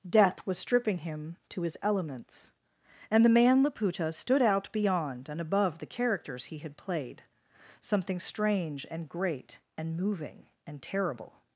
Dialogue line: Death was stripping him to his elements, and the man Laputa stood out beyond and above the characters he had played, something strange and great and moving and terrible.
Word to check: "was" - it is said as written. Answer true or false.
true